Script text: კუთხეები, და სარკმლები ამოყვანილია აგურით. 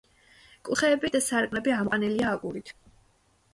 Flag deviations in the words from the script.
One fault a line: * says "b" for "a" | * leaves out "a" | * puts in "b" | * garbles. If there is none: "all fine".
all fine